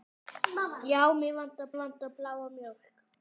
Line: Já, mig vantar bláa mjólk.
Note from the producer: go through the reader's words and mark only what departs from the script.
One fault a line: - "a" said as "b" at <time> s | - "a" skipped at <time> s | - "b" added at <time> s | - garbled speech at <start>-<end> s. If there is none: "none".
- "vantar" added at 1.8 s